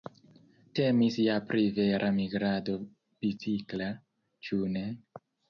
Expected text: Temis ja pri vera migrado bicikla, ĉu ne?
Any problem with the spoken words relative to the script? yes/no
no